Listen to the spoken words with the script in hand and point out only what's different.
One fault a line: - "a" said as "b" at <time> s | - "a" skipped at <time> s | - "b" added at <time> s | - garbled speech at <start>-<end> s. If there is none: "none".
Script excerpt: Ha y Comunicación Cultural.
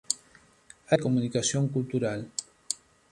none